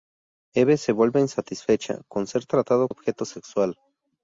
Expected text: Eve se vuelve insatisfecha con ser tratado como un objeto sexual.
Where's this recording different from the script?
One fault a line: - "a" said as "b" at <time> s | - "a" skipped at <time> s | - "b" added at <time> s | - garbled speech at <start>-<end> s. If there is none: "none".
- "como un" skipped at 2.9 s